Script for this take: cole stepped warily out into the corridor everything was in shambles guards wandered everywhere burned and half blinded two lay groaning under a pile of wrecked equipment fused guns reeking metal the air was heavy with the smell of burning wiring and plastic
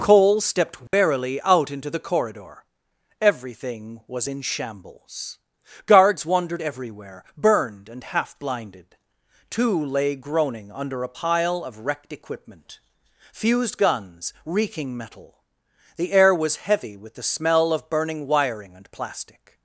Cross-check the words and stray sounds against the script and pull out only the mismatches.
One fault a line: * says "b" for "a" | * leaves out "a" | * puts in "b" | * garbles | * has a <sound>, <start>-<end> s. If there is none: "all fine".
* has a dropout, 0.9-0.9 s